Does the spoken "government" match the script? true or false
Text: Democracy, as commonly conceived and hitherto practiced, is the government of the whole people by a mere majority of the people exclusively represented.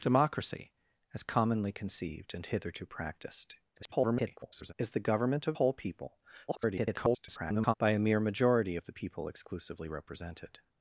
true